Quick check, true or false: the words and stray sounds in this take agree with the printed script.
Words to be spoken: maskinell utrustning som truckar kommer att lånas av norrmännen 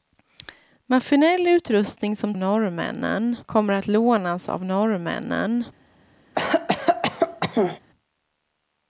false